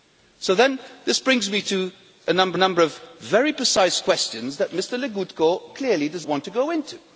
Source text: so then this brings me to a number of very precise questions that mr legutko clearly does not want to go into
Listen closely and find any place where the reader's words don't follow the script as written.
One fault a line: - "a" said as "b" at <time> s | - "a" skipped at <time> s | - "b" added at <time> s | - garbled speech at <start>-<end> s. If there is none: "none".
- "number" added at 2.6 s
- "not" skipped at 6.3 s